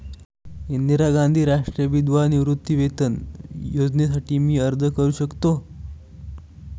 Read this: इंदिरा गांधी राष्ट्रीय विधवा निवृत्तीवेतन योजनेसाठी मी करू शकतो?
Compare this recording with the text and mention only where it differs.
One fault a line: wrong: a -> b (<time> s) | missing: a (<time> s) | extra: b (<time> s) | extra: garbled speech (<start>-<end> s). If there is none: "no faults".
extra: अर्ज (4.6 s)